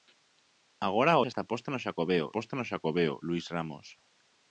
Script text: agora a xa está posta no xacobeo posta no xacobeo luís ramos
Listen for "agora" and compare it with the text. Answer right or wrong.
right